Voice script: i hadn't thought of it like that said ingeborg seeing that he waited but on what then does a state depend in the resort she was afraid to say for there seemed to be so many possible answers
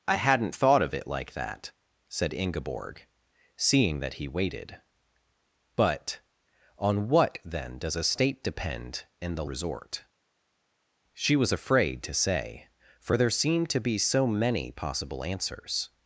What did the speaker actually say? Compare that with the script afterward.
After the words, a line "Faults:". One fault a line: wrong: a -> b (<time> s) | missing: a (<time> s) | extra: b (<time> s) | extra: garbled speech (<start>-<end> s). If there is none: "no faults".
i hadn't thought of it like that said ingeborg seeing that he waited but on what then does a state depend in the resort she was afraid to say for there seemed to be so many possible answers
Faults:
no faults